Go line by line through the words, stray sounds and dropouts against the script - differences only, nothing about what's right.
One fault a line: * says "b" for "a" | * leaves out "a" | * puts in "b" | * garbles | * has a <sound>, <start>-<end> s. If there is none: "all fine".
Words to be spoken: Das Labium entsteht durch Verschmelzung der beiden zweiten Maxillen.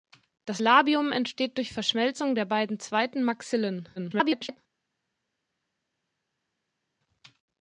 * garbles